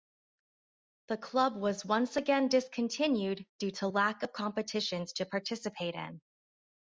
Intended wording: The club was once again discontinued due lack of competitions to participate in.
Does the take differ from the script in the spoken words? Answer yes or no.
yes